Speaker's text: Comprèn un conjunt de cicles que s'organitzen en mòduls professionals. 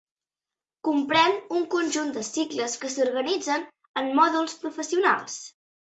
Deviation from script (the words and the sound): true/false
false